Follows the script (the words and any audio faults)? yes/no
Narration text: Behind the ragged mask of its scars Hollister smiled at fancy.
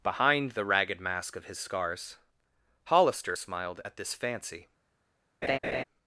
no